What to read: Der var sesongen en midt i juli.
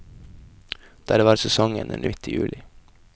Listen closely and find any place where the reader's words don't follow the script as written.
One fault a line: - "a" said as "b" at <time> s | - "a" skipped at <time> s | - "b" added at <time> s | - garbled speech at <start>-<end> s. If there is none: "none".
none